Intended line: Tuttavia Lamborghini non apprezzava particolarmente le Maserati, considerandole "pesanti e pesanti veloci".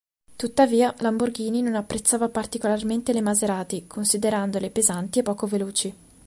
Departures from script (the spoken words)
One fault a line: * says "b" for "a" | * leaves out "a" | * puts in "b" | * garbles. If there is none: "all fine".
* says "poco" for "pesanti"